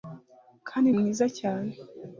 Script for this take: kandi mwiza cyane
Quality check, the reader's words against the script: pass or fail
pass